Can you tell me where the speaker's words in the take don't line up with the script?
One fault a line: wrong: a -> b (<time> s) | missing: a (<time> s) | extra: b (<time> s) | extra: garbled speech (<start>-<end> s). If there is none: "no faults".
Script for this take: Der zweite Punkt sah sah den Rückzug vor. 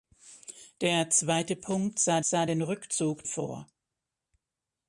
no faults